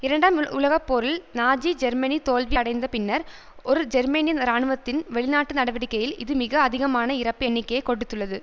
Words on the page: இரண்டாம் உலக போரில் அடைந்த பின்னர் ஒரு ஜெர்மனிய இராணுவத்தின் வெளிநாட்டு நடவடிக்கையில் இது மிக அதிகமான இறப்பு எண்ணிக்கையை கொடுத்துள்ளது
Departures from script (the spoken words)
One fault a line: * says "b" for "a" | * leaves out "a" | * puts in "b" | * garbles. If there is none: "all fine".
* puts in "நாஜி ஜெர்மனி தோல்வி"